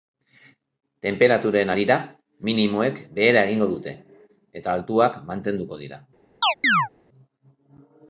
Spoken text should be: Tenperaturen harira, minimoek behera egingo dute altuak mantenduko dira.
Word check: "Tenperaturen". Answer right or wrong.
right